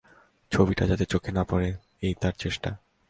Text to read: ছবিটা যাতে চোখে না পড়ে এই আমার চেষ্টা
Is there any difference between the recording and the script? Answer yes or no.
yes